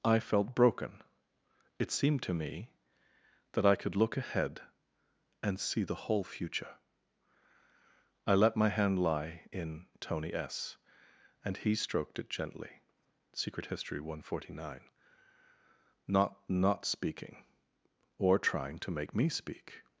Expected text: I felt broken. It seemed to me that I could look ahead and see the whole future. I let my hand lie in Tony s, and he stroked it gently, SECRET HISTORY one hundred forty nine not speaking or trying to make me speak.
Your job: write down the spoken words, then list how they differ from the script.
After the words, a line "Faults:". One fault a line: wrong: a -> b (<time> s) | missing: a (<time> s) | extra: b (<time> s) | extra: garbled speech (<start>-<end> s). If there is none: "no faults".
I felt broken. It seemed to me that I could look ahead and see the whole future. I let my hand lie in Tony s, and he stroked it gently, SECRET HISTORY one hundred forty nine not not speaking or trying to make me speak.
Faults:
extra: not (16.5 s)